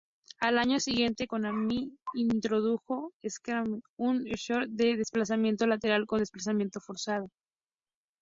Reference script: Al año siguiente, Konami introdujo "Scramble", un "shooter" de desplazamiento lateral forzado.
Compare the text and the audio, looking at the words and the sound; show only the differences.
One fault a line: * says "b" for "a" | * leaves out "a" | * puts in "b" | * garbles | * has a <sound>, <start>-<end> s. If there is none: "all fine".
* puts in "con desplazamiento"